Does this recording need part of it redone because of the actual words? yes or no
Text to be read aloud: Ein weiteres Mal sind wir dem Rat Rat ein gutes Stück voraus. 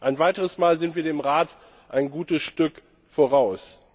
yes